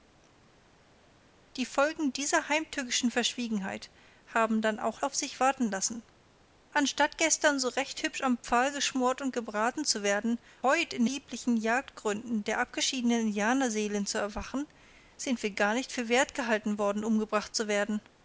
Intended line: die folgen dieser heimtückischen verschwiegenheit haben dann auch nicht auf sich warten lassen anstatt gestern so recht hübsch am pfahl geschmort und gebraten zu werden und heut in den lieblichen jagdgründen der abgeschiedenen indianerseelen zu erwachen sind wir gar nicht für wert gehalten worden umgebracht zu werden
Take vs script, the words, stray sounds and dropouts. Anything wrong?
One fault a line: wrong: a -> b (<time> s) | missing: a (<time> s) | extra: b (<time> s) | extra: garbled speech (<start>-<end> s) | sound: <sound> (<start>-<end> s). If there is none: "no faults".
missing: nicht (5.0 s)
missing: und (10.4 s)
missing: den (11.1 s)